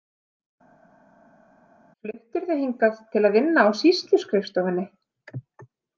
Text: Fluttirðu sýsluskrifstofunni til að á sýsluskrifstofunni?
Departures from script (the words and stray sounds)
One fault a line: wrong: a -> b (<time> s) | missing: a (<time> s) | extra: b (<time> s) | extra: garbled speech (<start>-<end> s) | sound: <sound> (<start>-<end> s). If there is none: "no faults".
wrong: sýsluskrifstofunni -> hingað (2.6 s)
extra: vinna (3.4 s)